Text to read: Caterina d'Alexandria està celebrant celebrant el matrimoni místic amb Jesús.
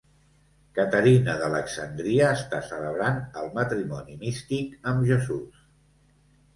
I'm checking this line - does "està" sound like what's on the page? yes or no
yes